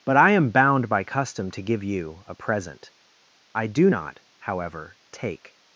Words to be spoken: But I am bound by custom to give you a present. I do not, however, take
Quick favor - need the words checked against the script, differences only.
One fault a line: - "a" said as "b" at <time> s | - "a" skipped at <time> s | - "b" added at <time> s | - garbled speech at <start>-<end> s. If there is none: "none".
none